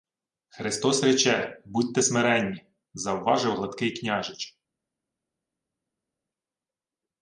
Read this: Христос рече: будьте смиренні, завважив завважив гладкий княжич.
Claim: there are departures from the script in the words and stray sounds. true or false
true